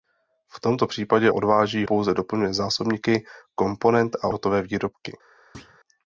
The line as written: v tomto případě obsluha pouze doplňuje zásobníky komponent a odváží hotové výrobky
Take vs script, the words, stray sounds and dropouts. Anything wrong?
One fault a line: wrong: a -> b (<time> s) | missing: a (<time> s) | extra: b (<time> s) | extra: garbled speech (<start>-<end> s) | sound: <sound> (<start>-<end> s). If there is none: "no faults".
wrong: obsluha -> odváží (1.3 s)
missing: odváží (4.3 s)
sound: thud (5.5-5.8 s)